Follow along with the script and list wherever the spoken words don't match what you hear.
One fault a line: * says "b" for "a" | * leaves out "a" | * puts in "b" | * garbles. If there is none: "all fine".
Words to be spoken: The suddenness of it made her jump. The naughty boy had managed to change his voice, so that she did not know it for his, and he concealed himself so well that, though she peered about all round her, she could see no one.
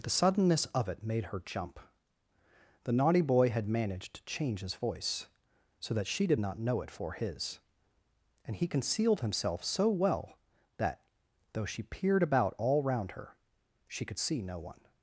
all fine